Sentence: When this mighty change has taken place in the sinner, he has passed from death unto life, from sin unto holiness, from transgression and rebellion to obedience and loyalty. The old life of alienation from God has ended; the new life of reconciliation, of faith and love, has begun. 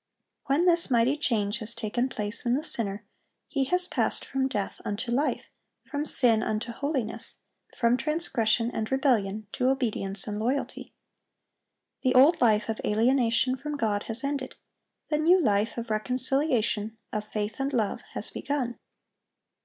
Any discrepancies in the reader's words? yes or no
no